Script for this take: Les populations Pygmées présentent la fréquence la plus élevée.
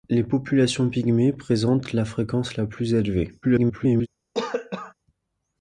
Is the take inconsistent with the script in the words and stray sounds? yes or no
yes